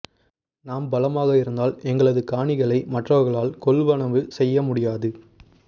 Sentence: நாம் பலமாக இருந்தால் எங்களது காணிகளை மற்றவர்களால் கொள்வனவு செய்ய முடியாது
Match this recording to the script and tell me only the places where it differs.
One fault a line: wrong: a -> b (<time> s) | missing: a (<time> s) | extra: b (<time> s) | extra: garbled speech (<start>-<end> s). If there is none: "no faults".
no faults